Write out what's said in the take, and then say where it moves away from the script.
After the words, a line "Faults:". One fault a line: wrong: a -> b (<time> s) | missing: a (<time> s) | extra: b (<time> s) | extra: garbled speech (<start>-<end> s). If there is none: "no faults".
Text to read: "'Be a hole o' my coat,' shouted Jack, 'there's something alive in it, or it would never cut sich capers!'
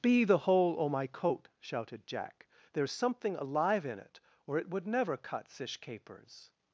"'Be the hole o' my coat,' shouted Jack, 'there's something alive in it, or it would never cut sich capers!'
Faults:
wrong: a -> the (0.2 s)